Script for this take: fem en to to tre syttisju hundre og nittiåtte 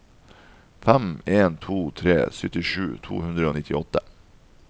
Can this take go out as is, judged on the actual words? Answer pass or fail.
fail